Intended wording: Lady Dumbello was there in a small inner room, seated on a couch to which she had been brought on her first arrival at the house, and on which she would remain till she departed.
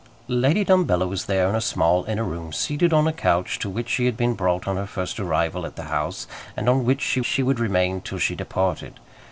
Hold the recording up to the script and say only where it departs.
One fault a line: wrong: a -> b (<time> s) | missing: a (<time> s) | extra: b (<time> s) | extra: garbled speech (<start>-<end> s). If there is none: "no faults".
extra: she (7.3 s)